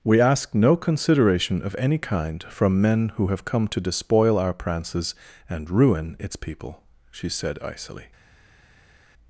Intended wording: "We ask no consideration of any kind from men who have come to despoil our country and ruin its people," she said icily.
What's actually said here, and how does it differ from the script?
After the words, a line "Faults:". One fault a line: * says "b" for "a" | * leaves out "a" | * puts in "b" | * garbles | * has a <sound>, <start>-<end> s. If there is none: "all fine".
"We ask no consideration of any kind from men who have come to despoil our prances and ruin its people," she said icily.
Faults:
* says "prances" for "country"